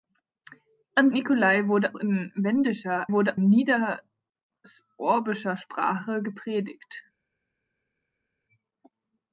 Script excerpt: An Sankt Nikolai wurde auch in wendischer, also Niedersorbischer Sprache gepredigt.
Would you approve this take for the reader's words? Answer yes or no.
no